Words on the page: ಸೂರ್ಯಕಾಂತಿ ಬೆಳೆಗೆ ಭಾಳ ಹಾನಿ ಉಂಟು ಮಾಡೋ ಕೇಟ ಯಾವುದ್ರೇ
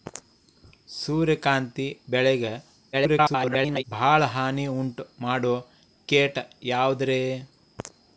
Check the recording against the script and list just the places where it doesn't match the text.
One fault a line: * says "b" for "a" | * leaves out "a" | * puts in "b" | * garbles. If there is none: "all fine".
* garbles